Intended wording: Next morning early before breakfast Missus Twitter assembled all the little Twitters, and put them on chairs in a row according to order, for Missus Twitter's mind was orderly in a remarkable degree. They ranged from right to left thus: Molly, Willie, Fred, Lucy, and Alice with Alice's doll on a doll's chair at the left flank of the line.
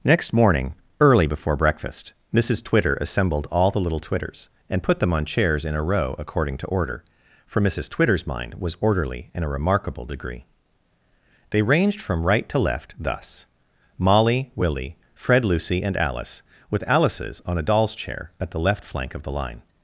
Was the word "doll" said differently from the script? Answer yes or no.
yes